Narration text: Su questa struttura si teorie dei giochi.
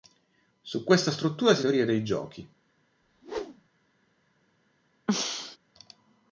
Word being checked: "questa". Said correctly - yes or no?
yes